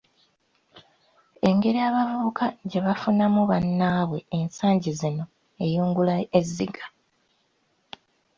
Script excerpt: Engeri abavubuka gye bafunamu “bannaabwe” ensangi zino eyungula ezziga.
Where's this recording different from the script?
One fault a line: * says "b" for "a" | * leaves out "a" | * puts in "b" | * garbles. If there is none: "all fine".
all fine